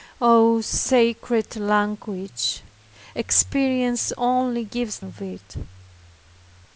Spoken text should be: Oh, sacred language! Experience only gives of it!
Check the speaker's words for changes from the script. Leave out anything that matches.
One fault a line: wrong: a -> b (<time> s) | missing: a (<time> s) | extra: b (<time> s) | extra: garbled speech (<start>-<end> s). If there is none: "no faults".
no faults